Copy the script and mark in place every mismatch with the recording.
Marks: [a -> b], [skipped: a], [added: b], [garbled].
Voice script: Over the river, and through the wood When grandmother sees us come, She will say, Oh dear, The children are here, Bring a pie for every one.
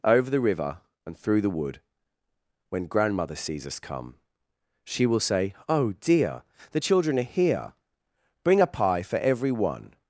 Over the river, and through the wood When grandmother sees us come, She will say, Oh dear, The children are here, Bring a pie for every one.